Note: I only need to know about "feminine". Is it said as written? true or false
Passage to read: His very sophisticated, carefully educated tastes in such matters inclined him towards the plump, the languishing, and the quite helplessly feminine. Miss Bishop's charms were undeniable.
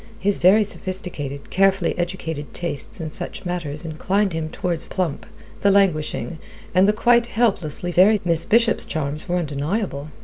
false